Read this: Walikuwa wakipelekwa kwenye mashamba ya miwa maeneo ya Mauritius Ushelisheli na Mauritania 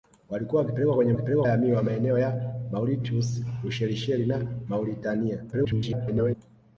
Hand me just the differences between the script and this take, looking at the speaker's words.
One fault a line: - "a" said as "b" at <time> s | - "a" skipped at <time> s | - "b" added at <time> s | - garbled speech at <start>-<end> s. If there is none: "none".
- "mashamba" said as "wakipelekwa" at 1.1 s
- garbled speech at 5.5-6.4 s